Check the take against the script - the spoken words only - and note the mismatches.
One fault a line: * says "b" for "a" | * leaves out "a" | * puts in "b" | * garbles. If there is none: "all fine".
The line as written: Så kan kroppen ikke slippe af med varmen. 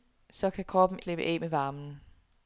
* leaves out "ikke"